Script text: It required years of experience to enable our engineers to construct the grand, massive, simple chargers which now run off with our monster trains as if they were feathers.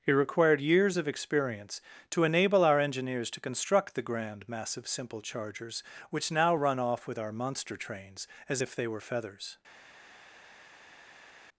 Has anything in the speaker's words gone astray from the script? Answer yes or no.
no